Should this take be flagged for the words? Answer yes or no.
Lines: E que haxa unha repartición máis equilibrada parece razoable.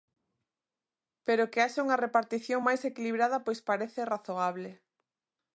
yes